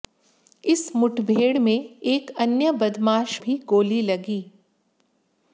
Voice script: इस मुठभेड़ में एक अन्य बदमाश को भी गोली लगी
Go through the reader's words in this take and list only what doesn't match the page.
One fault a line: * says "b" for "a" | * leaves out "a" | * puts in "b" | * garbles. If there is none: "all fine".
* leaves out "को"